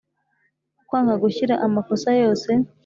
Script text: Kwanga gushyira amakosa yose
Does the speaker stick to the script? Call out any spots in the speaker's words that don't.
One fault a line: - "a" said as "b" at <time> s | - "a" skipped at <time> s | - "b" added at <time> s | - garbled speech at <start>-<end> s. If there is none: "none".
none